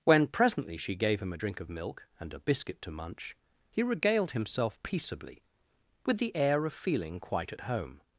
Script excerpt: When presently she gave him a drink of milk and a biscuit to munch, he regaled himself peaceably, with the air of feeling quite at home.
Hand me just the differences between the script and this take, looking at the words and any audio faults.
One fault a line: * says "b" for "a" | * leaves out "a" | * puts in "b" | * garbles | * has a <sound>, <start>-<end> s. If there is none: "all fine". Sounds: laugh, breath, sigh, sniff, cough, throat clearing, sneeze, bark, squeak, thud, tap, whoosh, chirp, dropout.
all fine